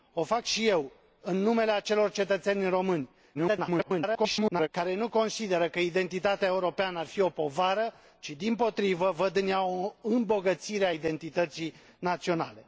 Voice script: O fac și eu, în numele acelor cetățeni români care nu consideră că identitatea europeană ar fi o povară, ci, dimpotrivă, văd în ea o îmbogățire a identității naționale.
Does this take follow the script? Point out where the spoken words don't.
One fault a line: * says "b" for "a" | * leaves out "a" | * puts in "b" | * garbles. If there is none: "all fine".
* garbles